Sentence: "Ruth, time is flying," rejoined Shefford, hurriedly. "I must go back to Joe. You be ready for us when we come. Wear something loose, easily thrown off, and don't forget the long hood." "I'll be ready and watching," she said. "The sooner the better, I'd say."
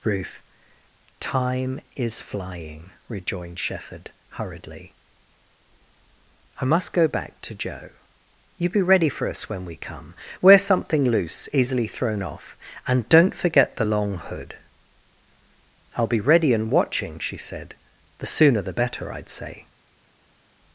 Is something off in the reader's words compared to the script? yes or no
no